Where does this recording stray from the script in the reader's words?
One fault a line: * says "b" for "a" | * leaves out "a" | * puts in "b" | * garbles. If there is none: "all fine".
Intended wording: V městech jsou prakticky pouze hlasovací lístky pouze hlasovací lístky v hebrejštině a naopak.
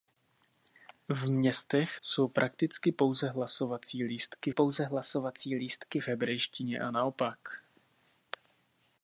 all fine